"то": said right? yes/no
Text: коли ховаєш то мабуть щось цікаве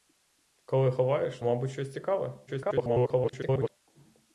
no